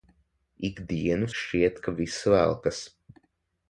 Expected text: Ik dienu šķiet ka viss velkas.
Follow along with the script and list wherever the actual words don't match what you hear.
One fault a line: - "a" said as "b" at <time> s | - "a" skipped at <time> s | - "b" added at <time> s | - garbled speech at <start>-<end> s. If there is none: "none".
none